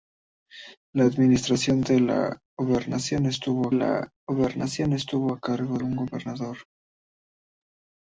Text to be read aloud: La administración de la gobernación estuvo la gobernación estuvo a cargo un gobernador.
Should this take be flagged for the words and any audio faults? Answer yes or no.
no